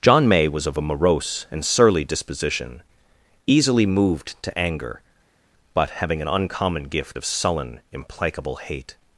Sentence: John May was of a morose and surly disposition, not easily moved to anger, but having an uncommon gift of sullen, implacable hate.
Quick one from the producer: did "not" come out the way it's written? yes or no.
no